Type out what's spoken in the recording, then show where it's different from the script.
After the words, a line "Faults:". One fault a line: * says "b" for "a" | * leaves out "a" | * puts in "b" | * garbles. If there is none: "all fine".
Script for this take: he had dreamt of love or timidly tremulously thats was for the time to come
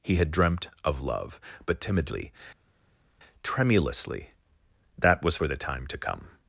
he had dreamt of love but timidly tremulously that was for the time to come
Faults:
* says "but" for "or"
* says "that" for "thats"